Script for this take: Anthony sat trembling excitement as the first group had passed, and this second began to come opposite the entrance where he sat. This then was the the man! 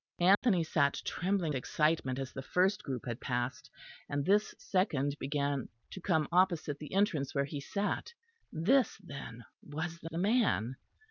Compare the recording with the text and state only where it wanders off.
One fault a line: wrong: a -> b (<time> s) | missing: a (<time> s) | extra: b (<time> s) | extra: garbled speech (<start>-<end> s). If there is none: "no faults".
no faults